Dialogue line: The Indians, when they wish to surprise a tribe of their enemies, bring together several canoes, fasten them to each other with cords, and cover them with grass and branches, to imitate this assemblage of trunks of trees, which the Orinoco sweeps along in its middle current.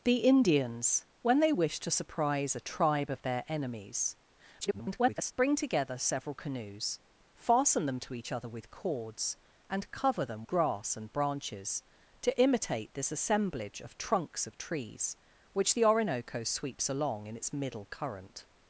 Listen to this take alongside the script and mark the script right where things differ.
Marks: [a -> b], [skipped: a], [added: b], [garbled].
The Indians, when they wish to surprise a tribe of their enemies, [garbled] bring together several canoes, fasten them to each other with cords, and cover them [skipped: with] grass and branches, to imitate this assemblage of trunks of trees, which the Orinoco sweeps along in its middle current.